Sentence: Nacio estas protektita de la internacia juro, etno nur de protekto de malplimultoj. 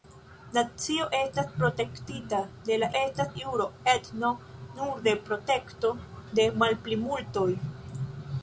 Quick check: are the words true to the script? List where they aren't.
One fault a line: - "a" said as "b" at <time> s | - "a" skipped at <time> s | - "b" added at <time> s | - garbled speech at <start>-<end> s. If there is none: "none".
- "internacia" said as "estas" at 3.0 s